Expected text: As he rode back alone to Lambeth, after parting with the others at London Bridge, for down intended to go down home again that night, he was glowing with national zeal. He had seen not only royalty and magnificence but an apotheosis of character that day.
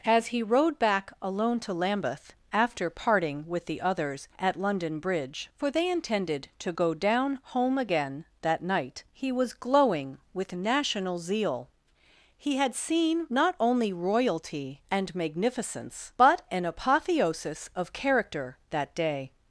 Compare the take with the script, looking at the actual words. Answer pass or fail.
fail